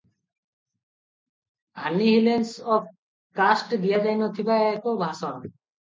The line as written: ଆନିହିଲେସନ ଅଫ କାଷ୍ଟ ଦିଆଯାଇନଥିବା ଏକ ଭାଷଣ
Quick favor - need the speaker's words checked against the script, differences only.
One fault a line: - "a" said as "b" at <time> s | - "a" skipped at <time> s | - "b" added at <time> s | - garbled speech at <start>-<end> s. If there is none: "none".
none